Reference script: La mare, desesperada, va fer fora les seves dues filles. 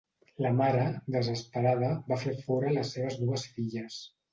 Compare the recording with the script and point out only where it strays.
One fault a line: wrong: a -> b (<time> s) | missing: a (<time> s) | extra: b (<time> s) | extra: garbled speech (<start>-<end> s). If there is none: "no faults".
no faults